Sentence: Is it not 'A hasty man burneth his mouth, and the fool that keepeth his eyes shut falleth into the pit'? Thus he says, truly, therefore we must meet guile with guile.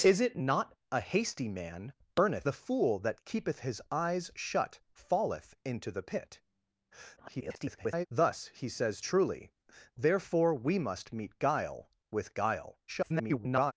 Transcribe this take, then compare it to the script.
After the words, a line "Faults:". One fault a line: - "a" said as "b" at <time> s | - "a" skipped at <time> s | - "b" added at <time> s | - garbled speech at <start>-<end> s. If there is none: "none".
Is it not 'A hasty man burneth the fool that keepeth his eyes shut falleth into the pit'? [garbled] Thus he says, truly, therefore we must meet guile with guile. [garbled]
Faults:
- "his mouth and" skipped at 2.5 s
- garbled speech at 7.2-8.1 s
- garbled speech at 12.9-13.7 s